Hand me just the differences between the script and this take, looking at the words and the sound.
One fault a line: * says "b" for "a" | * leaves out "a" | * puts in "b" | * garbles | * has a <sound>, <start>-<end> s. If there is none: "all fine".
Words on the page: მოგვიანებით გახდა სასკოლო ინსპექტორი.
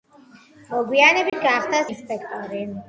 * has a dropout, 1.3-1.3 s
* leaves out "სასკოლო"